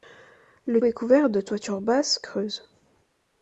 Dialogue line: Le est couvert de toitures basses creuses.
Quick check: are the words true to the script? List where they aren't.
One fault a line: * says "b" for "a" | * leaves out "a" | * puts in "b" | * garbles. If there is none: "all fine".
all fine